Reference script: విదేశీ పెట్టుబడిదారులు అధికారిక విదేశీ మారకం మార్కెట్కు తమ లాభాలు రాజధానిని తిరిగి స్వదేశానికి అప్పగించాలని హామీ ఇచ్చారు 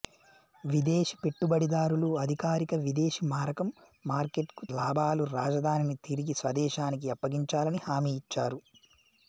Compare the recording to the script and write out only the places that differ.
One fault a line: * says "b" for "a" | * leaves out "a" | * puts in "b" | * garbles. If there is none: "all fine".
* leaves out "తమ"